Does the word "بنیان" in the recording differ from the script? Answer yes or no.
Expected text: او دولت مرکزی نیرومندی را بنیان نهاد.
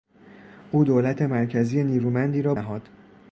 yes